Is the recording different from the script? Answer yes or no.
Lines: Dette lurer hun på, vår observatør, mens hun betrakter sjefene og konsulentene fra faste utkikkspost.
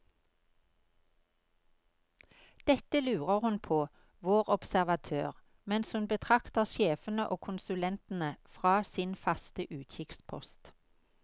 yes